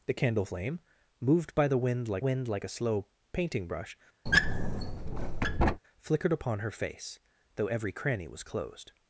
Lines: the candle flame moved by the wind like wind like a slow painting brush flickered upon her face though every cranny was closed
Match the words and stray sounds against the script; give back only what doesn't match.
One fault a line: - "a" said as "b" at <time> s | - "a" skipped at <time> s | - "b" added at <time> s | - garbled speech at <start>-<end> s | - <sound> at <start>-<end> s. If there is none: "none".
- squeak at 4.3-5.8 s